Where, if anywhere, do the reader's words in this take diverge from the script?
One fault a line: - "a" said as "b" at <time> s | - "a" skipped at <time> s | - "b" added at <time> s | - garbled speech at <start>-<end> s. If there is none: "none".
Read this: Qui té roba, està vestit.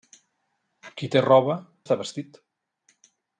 none